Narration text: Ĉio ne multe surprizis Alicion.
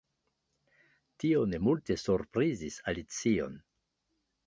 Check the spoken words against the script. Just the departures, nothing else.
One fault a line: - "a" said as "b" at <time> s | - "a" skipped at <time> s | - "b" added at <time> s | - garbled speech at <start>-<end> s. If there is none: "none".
- "Ĉio" said as "Tio" at 1.2 s